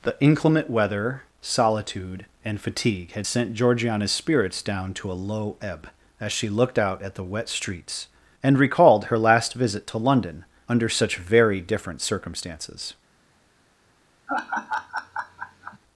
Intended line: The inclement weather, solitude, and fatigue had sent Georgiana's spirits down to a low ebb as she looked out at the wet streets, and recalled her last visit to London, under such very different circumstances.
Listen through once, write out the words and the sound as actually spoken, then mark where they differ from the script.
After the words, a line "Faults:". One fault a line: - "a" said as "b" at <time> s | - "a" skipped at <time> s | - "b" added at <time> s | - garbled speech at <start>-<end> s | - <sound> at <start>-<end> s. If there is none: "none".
The inclement weather, solitude, and fatigue had sent Georgiana's spirits down to a low ebb as she looked out at the wet streets, and recalled her last visit to London, under such very different circumstances.
Faults:
- laugh at 14.3-15.8 s